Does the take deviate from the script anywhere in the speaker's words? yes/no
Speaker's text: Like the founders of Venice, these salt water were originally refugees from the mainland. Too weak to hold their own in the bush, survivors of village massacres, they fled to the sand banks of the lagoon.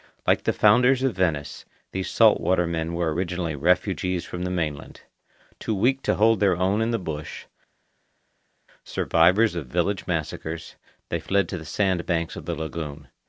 yes